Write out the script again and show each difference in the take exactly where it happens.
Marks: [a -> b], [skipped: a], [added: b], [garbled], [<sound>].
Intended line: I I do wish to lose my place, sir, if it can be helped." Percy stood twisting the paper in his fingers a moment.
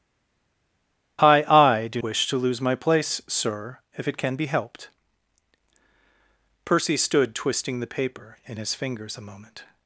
I I do wish to lose my place, sir, if it can be helped." Percy stood twisting the paper in his fingers a moment.